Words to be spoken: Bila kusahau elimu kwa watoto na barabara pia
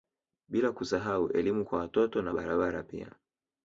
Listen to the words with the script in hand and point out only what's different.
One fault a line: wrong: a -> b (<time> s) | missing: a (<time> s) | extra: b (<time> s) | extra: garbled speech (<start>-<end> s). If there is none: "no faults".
no faults